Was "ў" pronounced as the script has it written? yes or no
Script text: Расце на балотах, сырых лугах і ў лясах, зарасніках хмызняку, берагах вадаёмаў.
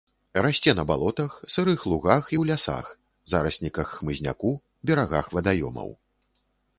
yes